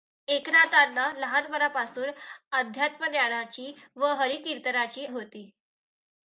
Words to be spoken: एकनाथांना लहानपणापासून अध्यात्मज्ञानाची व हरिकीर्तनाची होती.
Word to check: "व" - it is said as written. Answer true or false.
true